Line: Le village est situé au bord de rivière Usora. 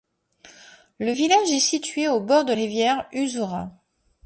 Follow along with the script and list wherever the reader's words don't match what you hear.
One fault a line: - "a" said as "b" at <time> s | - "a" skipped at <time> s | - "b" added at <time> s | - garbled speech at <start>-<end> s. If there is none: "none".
none